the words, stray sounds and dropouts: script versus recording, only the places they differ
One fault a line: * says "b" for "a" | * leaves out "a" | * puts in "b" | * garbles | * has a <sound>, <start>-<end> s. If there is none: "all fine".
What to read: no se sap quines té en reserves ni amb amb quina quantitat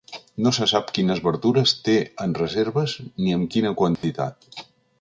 * puts in "verdures"
* leaves out "amb"
* has a dropout, 4.0-4.0 s